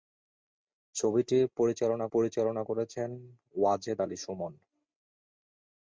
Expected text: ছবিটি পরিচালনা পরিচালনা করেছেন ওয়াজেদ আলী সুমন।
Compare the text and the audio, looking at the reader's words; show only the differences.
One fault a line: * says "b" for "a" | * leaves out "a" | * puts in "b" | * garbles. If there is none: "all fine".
all fine